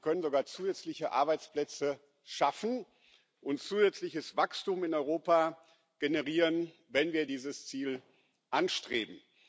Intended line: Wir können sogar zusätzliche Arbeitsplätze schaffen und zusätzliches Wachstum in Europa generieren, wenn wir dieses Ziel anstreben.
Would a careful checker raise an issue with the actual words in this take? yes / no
no